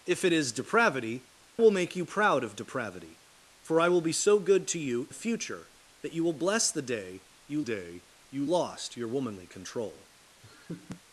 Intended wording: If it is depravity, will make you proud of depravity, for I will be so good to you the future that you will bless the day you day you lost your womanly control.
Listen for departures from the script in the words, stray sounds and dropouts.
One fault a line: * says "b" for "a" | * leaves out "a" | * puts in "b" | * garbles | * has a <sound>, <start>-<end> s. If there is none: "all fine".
* has a laugh, 10.4-11.0 s